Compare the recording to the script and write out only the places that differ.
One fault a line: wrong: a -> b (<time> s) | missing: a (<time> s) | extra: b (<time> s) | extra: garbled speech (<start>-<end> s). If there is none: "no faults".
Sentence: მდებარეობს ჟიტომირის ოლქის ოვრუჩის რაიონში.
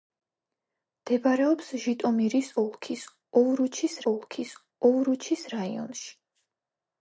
extra: ოლქის ოვრუჩის (4.1 s)